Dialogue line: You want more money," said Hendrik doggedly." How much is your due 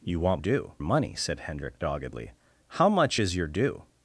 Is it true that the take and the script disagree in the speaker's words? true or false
true